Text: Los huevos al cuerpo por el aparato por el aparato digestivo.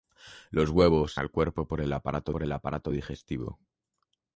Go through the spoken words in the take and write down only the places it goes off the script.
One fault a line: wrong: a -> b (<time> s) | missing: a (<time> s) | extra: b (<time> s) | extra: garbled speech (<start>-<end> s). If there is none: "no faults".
no faults